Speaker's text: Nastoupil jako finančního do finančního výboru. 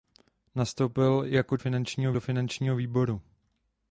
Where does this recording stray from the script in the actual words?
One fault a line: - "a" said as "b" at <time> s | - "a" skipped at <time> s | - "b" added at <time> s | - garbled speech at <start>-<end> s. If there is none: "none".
none